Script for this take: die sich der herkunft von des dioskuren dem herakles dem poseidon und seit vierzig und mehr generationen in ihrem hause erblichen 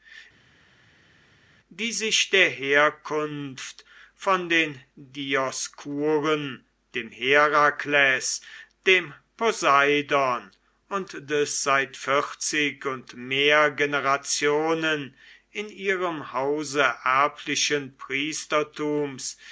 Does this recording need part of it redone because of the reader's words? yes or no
yes